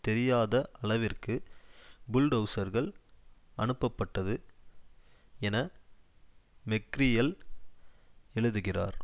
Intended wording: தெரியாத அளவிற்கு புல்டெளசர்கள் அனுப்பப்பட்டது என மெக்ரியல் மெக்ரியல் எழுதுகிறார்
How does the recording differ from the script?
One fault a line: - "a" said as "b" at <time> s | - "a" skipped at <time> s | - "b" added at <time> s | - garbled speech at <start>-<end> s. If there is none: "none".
- "மெக்ரியல்" skipped at 7.3 s